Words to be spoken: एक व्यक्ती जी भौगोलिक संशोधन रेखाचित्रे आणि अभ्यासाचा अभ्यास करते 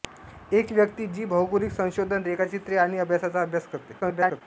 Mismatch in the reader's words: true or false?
true